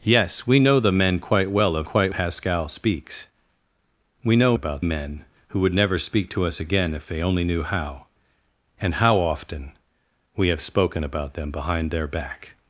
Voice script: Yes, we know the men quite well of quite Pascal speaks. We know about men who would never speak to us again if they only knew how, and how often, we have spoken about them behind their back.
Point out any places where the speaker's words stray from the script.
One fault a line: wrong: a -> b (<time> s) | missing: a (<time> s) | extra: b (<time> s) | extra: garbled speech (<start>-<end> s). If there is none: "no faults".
no faults